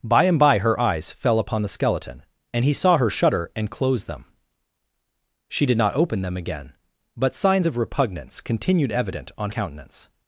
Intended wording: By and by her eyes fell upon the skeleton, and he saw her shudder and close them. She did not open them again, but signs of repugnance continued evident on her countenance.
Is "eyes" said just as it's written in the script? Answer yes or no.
yes